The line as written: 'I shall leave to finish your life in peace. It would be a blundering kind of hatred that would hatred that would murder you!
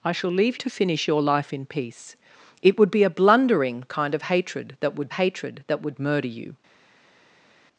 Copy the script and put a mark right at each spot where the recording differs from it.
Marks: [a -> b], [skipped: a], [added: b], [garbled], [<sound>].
'I shall leave to finish your life in peace. It would be a blundering kind of hatred that would hatred that would murder you!